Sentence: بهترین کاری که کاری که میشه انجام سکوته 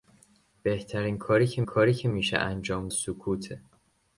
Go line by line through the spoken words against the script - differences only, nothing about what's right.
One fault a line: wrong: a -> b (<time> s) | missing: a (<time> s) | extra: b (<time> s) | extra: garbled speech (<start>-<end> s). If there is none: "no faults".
no faults